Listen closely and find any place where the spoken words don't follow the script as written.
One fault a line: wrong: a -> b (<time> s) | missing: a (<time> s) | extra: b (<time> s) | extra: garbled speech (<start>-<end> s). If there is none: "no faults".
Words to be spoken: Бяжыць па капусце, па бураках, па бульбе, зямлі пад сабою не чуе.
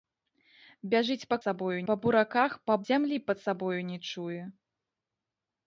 wrong: капусце -> сабою (1.4 s)
missing: бульбе (2.8 s)